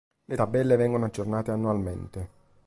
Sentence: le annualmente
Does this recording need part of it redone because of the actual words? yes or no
yes